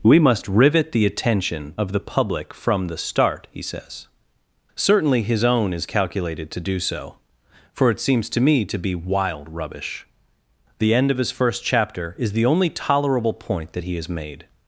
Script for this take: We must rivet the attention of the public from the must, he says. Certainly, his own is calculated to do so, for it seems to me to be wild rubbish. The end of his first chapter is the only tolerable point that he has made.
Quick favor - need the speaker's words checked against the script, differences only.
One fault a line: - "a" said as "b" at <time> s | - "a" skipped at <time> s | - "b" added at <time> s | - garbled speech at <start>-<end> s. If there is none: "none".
- "must" said as "start" at 3.0 s